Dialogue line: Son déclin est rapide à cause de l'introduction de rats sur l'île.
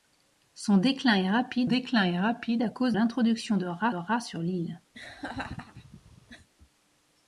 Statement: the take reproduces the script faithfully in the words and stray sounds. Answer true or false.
false